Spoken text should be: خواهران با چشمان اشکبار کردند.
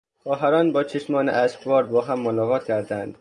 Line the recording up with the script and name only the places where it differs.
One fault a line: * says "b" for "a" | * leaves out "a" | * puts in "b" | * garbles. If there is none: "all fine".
* puts in "با هم ملاقات"